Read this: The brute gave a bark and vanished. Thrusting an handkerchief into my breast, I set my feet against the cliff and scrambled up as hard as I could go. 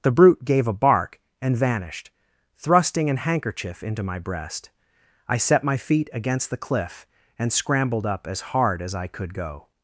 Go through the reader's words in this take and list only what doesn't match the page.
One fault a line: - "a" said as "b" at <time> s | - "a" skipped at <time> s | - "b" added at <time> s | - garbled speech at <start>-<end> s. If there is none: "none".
none